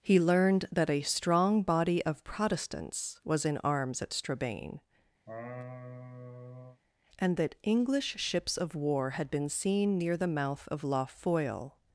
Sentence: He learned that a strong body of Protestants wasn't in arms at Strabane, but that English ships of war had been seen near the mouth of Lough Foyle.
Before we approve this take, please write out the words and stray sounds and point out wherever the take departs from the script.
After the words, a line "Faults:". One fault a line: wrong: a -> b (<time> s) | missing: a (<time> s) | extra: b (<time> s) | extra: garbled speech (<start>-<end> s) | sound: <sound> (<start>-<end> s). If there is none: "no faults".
He learned that a strong body of Protestants was in arms at Strabane, and that English ships of war had been seen near the mouth of Lough Foyle.
Faults:
wrong: wasn't -> was (3.2 s)
sound: laugh (5.3-6.8 s)
wrong: but -> and (7.2 s)